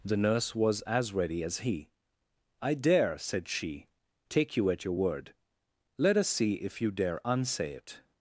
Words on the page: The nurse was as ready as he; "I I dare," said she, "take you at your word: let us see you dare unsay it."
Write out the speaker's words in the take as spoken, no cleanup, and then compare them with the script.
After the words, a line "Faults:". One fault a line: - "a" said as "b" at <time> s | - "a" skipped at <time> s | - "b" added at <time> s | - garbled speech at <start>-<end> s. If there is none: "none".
The nurse was as ready as he; "I dare," said she, "take you at your word: let us see if you dare unsay it."
Faults:
- "I" skipped at 2.7 s
- "if" added at 6.6 s